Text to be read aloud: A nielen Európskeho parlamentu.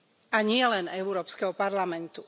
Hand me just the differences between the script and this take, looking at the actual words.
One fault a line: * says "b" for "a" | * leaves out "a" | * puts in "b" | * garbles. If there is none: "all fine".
all fine